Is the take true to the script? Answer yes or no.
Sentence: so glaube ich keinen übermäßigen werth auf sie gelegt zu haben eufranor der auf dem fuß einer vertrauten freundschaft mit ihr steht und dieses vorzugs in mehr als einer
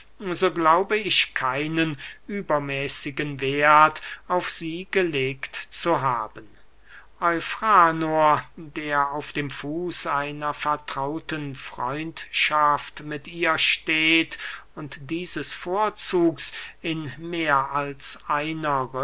yes